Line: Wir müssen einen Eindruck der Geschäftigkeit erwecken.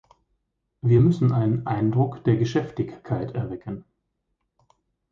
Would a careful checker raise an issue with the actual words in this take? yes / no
no